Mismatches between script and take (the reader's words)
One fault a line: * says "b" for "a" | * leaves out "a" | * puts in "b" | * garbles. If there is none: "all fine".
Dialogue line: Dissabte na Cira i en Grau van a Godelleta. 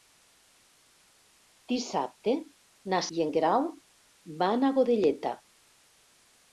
* leaves out "Cira"